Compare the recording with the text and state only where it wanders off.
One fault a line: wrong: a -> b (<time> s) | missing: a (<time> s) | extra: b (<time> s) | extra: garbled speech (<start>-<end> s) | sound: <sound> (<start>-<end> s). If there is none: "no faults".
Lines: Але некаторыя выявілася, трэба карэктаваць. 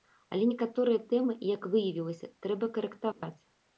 extra: тэмы як (1.1 s)
sound: dropout (3.1-3.2 s)